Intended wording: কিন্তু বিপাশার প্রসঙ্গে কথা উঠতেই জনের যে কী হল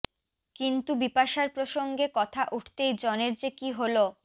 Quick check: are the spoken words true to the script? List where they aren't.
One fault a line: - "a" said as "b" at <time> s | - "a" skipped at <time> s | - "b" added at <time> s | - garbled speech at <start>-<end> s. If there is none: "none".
none